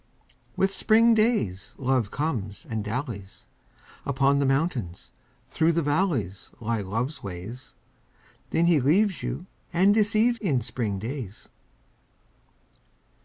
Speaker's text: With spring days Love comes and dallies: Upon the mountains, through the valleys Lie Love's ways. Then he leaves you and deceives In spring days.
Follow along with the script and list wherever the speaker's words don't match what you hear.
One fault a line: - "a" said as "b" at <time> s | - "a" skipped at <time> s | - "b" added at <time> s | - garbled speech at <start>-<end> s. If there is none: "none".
none